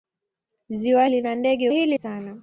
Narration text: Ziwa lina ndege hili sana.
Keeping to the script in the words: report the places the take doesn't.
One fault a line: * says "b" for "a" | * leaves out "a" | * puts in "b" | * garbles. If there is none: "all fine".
all fine